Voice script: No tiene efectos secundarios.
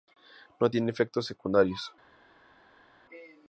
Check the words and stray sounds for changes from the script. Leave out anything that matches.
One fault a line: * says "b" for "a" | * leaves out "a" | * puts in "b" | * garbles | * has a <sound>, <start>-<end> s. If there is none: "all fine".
all fine